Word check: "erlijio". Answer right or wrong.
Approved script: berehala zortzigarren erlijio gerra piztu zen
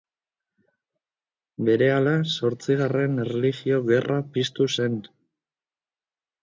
right